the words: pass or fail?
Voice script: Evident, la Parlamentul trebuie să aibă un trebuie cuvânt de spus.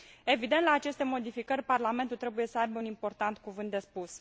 fail